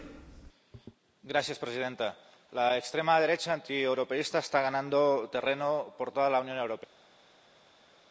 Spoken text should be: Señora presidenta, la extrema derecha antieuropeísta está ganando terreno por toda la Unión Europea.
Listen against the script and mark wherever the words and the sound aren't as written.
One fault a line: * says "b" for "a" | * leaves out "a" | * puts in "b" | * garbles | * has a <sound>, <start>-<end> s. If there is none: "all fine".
all fine